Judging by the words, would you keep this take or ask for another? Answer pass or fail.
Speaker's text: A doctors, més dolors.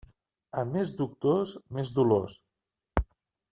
fail